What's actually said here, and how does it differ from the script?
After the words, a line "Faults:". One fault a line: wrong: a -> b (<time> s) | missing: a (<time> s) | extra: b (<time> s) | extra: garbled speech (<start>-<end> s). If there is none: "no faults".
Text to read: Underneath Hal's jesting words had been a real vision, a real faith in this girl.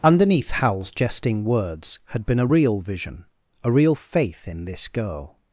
Underneath Hal's jesting words had been a real vision, a real faith in this girl.
Faults:
no faults